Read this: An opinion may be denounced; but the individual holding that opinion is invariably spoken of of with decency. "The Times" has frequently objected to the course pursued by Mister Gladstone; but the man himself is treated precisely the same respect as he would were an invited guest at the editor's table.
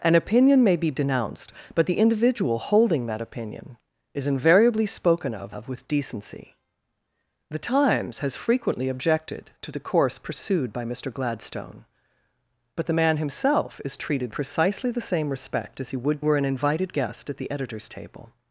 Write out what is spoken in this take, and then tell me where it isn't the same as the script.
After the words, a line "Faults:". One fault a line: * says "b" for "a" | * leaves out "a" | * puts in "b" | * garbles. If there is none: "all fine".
An opinion may be denounced; but the individual holding that opinion is invariably spoken of of with decency. "The Times" has frequently objected to the course pursued by Mister Gladstone; but the man himself is treated precisely the same respect as he would were an invited guest at the editor's table.
Faults:
all fine